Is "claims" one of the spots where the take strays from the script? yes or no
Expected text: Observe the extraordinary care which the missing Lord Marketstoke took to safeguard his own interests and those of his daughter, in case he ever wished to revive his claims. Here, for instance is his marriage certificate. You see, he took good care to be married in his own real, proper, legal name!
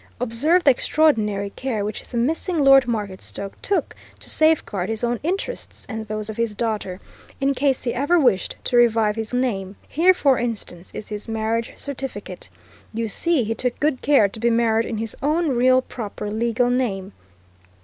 yes